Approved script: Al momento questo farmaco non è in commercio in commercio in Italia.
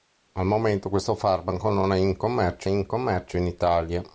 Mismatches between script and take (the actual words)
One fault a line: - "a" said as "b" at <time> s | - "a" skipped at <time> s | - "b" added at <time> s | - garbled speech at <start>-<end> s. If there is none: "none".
none